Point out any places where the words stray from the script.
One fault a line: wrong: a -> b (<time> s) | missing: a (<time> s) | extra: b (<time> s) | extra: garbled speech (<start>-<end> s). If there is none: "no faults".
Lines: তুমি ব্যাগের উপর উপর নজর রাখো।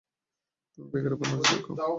missing: উপর (1.3 s)